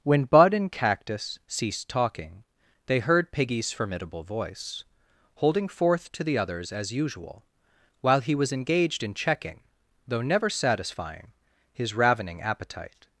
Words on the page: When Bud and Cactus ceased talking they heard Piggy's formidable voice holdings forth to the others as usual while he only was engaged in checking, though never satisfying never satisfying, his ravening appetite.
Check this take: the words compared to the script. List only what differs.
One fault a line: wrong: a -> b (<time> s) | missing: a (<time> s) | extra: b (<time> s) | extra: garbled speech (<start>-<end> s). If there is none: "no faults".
wrong: holdings -> holding (5.3 s)
missing: only (8.3 s)
missing: never satisfying (11.3 s)